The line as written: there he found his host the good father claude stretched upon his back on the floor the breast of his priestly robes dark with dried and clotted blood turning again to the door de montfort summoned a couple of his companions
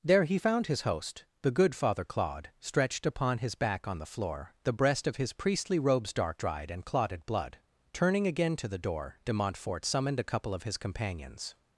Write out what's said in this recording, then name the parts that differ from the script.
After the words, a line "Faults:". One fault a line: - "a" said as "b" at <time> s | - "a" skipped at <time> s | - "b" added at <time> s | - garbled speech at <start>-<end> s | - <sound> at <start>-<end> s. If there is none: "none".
there he found his host the good father claude stretched upon his back on the floor the breast of his priestly robes dark dried and clotted blood turning again to the door de montfort summoned a couple of his companions
Faults:
- "with" skipped at 6.4 s